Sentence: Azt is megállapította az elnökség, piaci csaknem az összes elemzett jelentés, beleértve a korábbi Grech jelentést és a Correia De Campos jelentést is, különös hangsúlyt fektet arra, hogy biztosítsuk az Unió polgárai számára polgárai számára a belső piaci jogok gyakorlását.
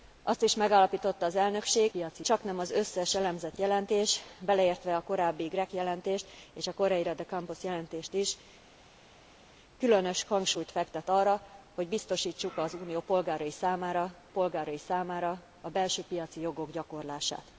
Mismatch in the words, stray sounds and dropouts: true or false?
false